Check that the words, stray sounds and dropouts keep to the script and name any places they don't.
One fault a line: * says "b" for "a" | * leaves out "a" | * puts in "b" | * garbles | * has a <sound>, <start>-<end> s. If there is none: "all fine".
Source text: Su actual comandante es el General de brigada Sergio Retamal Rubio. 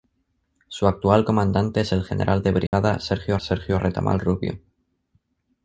* has a dropout, 2.7-2.7 s
* puts in "Sergio"